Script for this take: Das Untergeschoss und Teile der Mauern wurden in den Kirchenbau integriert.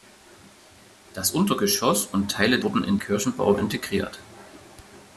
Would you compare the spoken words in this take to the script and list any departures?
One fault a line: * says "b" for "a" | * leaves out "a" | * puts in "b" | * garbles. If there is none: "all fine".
* leaves out "der Mauern"
* leaves out "den"